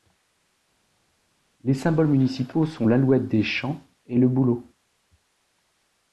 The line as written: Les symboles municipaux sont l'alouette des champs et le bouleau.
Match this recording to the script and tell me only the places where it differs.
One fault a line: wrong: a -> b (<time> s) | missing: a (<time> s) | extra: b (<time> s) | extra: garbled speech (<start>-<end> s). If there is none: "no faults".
no faults